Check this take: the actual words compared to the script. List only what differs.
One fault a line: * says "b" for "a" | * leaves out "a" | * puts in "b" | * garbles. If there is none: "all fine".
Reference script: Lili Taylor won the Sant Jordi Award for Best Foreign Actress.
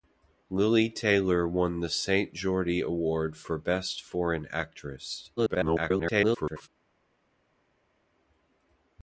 * garbles